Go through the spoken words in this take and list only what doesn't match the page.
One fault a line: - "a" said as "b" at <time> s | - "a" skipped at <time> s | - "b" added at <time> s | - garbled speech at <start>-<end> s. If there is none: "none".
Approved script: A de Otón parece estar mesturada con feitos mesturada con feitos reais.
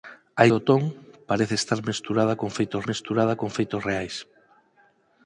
none